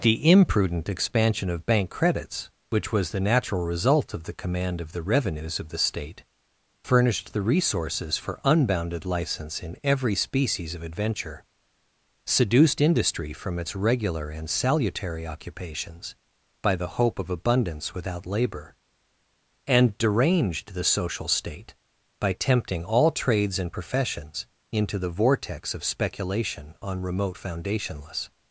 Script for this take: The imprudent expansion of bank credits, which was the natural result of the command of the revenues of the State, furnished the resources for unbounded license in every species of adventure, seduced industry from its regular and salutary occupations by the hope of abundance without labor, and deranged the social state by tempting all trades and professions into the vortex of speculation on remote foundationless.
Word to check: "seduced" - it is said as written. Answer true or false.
true